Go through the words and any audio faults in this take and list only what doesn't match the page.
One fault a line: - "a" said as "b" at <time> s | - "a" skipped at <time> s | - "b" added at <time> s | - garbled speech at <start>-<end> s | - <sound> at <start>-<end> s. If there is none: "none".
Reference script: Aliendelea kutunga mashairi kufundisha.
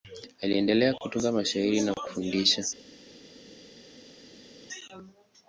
- "na" added at 1.8 s